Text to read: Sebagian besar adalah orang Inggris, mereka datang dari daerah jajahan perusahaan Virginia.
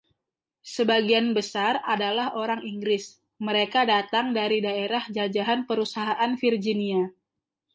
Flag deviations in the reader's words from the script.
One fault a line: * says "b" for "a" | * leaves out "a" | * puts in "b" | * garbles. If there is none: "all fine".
all fine